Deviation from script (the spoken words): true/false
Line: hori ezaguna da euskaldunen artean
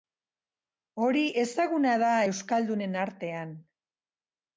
false